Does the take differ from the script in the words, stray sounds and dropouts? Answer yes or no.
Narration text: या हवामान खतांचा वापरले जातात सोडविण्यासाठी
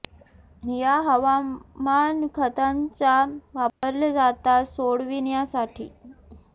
yes